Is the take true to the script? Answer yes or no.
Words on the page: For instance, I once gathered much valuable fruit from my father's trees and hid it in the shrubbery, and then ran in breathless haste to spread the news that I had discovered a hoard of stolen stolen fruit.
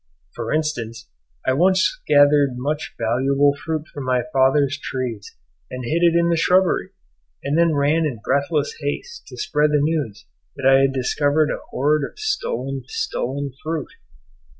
yes